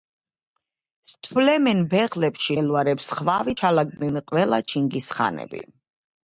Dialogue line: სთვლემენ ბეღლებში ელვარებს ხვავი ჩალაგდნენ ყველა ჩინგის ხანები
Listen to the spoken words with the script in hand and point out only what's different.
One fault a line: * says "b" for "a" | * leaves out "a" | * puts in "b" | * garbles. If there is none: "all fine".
all fine